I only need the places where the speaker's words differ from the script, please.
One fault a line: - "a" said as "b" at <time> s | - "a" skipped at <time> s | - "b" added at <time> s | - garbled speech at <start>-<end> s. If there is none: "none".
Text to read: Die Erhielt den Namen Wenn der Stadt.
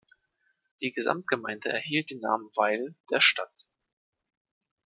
- "Gesamtgemeinde" added at 0.9 s
- "Wenn" said as "Weil" at 2.5 s